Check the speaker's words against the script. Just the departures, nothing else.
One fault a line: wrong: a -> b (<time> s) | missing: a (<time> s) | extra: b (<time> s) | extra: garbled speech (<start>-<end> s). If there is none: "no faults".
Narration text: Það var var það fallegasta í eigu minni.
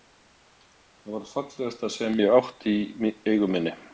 missing: var (1.3 s)
extra: sem ég átti (2.0 s)